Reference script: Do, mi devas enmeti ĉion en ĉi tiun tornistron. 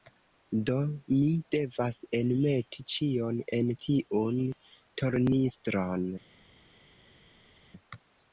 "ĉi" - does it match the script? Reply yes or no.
no